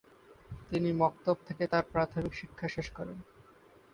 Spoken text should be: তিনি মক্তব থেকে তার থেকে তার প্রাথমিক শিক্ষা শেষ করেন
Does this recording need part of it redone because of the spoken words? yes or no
yes